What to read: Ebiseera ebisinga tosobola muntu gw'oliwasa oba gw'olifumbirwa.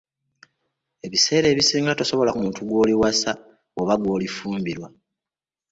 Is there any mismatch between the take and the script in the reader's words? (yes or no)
no